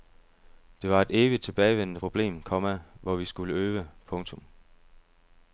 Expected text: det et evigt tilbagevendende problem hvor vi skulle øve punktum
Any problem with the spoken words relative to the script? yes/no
yes